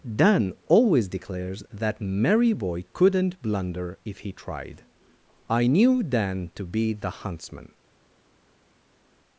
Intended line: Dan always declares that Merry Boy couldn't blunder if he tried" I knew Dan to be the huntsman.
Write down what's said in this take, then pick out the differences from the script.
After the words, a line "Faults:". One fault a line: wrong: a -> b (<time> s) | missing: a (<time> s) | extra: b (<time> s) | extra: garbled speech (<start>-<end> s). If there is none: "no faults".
Dan always declares that Merry Boy couldn't blunder if he tried" I knew Dan to be the huntsman.
Faults:
no faults